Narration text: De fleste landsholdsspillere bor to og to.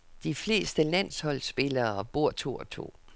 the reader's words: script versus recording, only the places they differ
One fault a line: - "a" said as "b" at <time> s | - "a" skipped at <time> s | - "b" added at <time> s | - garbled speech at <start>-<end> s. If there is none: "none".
none